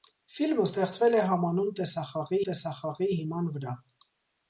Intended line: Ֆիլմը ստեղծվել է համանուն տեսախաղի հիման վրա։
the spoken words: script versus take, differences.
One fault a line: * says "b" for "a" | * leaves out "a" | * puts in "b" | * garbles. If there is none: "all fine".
* puts in "տեսախաղի"